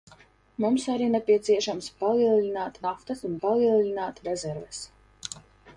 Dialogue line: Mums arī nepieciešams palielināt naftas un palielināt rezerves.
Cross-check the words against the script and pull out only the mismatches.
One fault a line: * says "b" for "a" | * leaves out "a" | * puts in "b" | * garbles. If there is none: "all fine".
all fine